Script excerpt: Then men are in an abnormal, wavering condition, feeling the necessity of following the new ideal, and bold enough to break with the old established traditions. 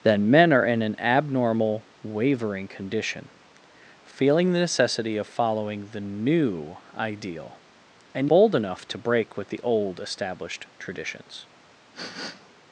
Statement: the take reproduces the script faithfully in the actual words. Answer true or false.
true